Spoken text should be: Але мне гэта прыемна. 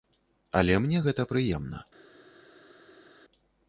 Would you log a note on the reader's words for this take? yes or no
no